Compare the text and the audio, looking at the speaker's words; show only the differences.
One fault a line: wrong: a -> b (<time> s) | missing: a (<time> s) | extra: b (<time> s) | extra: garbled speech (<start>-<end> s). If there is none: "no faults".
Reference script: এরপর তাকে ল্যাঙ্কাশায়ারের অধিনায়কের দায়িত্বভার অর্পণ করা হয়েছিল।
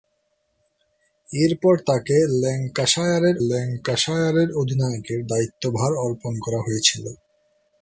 extra: ল্যাঙ্কাশায়ারের (3.5 s)